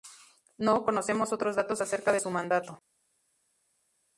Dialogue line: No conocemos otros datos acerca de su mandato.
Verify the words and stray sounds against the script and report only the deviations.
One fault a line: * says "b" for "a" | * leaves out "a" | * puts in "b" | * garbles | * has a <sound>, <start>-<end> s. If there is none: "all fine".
all fine